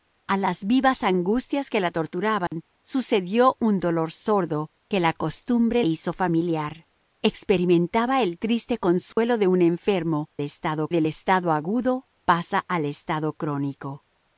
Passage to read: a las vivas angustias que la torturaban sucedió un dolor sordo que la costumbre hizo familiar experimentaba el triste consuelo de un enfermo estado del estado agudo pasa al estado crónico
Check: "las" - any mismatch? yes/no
no